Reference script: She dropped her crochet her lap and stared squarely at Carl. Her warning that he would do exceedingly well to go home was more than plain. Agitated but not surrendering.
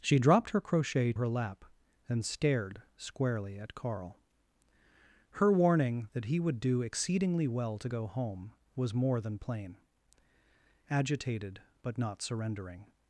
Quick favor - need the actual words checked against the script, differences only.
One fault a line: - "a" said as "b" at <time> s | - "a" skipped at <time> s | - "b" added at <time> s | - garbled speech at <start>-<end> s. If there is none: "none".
none